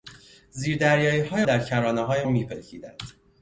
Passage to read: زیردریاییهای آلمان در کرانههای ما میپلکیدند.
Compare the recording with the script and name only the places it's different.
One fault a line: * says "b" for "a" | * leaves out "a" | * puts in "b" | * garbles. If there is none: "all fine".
* leaves out "آلمان"
* leaves out "ما"